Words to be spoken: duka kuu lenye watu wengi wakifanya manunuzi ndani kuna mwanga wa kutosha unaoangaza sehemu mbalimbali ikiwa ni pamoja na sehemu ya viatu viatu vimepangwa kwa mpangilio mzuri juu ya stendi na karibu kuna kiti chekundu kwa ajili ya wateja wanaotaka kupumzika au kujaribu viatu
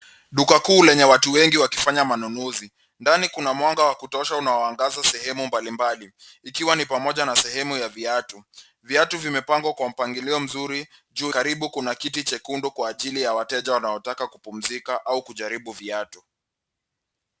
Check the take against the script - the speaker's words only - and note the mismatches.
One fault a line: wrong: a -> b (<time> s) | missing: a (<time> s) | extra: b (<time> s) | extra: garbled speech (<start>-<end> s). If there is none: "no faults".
missing: ya stendi na (11.3 s)